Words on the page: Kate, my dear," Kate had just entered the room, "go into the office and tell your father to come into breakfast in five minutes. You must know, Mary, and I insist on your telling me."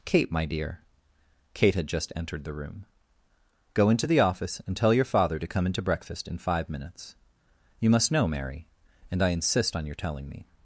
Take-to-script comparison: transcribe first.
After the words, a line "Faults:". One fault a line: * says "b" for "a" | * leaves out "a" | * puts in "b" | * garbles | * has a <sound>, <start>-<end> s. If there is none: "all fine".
Kate, my dear," Kate had just entered the room, "go into the office and tell your father to come into breakfast in five minutes. You must know, Mary, and I insist on your telling me."
Faults:
all fine